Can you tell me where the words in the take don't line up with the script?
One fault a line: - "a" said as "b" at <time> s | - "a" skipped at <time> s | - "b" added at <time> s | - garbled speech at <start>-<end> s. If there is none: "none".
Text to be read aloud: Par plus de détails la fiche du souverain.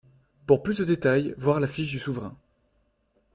- "Par" said as "Pour" at 0.5 s
- "voir" added at 1.4 s